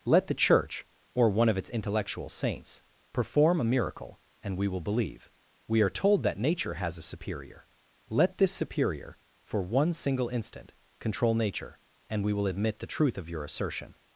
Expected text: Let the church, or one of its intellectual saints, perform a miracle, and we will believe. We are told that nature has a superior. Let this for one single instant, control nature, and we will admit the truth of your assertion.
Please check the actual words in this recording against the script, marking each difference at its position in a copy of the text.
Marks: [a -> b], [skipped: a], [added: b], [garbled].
Let the church, or one of its intellectual saints, perform a miracle, and we will believe. We are told that nature has a superior. Let this [added: superior] for one single instant, control nature, and we will admit the truth of your assertion.